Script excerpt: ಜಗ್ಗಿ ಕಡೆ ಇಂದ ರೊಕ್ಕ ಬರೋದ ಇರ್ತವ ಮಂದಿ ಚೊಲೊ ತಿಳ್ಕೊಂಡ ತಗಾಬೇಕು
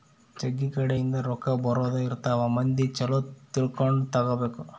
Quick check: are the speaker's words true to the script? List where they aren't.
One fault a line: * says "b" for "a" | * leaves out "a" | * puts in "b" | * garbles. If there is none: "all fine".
all fine